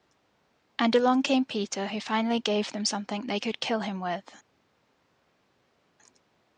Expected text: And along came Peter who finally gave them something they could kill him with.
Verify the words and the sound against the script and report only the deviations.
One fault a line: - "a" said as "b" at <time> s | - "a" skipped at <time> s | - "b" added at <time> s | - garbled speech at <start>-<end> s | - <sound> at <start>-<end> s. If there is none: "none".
none